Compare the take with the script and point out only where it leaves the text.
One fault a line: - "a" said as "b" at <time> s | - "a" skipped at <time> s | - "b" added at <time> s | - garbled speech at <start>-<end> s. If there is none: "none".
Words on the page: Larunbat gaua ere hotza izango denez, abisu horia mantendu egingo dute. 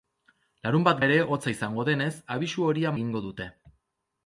- "gaua" skipped at 1.0 s
- "mantendu" skipped at 2.9 s